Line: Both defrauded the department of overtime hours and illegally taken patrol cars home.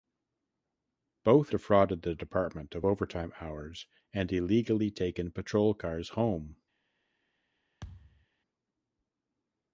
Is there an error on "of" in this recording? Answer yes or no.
no